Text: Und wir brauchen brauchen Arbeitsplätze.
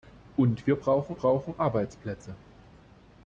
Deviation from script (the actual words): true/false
false